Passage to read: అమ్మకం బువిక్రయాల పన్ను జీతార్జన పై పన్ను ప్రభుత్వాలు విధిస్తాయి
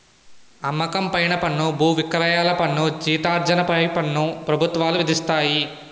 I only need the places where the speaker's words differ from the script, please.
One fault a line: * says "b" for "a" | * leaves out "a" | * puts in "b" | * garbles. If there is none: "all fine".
* puts in "పైన పన్ను"